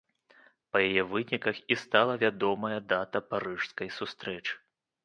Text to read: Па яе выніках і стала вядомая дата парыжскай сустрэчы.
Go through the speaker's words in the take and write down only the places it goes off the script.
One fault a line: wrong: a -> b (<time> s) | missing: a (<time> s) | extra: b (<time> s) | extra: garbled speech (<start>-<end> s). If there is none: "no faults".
no faults